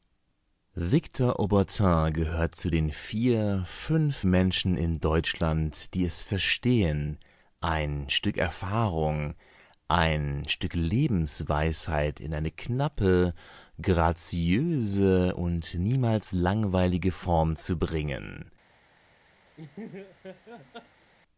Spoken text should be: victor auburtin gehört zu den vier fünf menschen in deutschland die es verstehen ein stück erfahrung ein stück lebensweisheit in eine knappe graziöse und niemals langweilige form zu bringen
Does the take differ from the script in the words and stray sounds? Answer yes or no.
yes